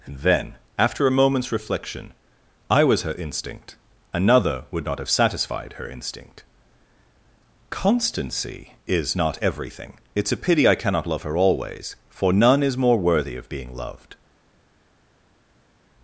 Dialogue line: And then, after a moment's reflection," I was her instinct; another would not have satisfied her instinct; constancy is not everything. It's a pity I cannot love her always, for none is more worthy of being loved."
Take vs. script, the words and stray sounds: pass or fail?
pass